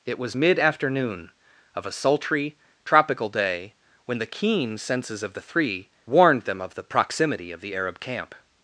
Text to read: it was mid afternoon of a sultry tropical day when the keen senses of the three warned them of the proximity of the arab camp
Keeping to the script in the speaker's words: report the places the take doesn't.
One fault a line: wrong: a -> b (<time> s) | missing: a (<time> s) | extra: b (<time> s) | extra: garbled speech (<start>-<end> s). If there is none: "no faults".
no faults